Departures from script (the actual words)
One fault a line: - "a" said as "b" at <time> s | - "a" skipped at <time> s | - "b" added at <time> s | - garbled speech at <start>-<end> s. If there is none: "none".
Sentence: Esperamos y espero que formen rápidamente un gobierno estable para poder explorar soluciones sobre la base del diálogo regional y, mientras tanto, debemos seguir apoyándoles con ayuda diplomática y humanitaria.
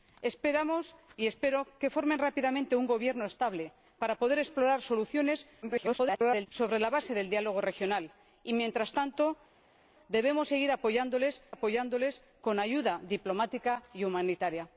- garbled speech at 5.6-6.5 s
- "apoyándoles" added at 11.5 s